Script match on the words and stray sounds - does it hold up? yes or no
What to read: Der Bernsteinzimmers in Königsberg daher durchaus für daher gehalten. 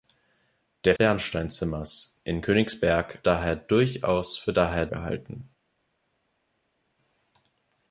yes